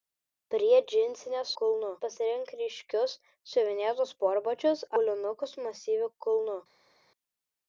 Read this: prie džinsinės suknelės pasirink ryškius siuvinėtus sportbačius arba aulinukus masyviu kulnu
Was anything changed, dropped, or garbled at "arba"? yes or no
yes